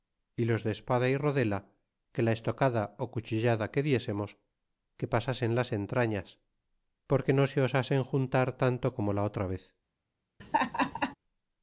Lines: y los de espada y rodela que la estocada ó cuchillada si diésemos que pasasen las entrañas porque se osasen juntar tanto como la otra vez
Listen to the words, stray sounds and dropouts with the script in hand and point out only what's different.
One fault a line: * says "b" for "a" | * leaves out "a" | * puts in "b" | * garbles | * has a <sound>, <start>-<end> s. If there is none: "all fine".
* says "que" for "si"
* puts in "no"
* has a laugh, 10.4-11.1 s